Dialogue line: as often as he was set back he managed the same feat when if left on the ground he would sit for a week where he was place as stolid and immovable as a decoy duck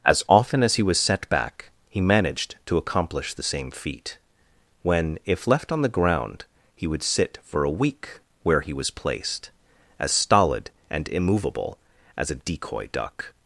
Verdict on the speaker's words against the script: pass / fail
fail